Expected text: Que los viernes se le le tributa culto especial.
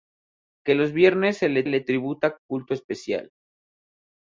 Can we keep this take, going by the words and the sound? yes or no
yes